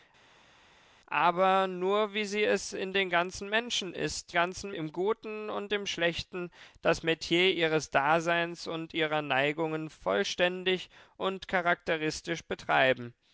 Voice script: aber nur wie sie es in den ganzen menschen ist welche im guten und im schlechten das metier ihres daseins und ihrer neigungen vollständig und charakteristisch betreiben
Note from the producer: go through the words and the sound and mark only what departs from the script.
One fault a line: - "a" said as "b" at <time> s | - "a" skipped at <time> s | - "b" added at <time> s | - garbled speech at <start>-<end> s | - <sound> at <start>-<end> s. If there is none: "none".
- "welche" said as "ganzen" at 4.3 s